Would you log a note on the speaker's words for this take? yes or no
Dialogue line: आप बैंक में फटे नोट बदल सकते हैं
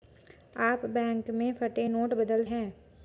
yes